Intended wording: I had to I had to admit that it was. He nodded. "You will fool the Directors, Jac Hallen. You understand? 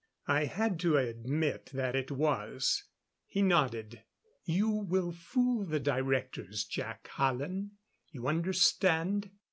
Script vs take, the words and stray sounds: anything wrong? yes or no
yes